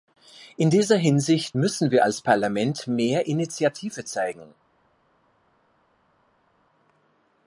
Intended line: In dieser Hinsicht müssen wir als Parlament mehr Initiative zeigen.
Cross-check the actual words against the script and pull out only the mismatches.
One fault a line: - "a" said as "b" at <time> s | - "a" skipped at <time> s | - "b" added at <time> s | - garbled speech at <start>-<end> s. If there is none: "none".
none